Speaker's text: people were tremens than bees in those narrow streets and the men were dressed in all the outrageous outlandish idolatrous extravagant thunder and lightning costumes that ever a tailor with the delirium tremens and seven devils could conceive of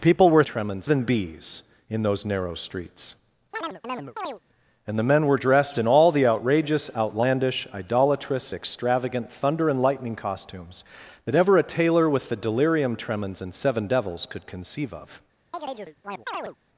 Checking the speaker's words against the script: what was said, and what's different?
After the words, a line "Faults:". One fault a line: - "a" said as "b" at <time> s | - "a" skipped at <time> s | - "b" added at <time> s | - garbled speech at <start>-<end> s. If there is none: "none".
people were tremens than bees in those narrow streets and the men were dressed in all the outrageous outlandish idolatrous extravagant thunder and lightning costumes that ever a tailor with the delirium tremens and seven devils could conceive of
Faults:
none